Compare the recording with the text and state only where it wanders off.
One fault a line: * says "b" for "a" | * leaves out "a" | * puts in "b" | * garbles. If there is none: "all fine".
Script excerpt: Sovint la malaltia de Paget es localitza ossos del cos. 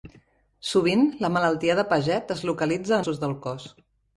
all fine